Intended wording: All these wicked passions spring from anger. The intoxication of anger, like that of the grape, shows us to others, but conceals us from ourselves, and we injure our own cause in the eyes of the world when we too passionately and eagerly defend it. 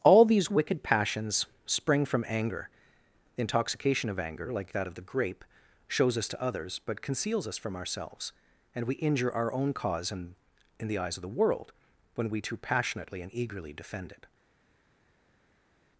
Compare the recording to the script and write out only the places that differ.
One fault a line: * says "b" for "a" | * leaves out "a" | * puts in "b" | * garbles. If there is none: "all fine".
* puts in "in"